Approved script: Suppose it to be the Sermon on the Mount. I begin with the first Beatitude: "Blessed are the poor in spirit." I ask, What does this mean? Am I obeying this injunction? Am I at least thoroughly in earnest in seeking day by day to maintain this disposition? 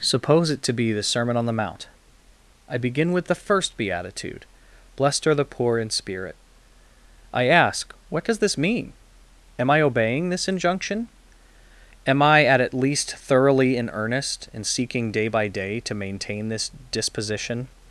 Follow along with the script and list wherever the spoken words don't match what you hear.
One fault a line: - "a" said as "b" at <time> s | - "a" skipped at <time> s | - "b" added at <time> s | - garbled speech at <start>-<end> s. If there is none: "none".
- "at" added at 12.6 s